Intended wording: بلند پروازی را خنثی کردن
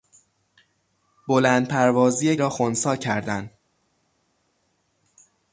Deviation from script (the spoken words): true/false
false